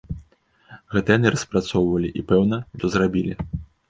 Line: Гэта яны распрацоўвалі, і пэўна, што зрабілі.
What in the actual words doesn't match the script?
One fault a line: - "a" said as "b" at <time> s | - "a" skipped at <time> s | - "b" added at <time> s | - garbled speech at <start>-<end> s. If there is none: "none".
none